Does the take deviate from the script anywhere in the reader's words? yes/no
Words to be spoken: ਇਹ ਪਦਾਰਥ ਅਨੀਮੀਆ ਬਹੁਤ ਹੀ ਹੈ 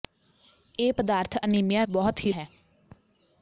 no